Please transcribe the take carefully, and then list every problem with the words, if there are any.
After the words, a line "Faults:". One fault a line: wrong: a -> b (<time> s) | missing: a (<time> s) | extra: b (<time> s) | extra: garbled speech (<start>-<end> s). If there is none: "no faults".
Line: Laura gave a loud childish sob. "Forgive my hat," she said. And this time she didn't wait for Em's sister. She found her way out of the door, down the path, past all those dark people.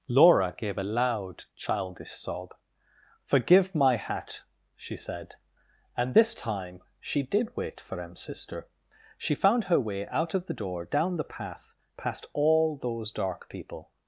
Laura gave a loud childish sob. "Forgive my hat," she said. And this time she did wait for Em's sister. She found her way out of the door, down the path, past all those dark people.
Faults:
wrong: didn't -> did (7.2 s)